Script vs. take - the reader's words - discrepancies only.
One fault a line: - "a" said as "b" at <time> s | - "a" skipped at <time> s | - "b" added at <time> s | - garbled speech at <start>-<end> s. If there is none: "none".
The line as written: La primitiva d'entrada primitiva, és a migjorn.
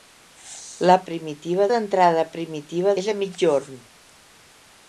none